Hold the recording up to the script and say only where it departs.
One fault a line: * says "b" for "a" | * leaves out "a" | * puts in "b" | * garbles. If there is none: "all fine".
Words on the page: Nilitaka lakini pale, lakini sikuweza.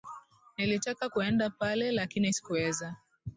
* says "kuenda" for "lakini"